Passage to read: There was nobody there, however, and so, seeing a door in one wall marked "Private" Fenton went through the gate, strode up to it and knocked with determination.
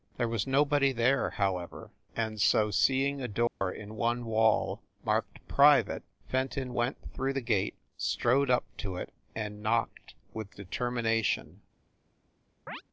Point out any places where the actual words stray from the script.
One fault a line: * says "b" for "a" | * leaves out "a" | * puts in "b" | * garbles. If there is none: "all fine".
all fine